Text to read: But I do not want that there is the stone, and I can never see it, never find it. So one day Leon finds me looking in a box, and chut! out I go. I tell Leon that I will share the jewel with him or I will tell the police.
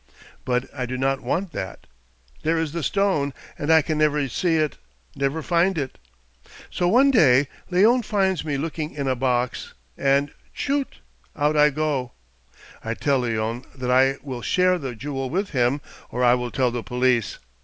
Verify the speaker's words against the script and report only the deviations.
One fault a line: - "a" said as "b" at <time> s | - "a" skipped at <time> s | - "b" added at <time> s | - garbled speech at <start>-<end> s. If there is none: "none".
none